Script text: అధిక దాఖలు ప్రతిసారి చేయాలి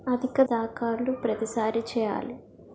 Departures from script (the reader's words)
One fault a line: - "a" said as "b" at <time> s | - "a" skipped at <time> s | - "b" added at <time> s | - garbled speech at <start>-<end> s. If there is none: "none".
none